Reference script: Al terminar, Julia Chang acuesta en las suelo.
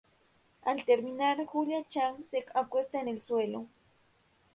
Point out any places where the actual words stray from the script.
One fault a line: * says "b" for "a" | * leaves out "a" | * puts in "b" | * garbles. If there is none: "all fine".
* puts in "se"
* says "el" for "las"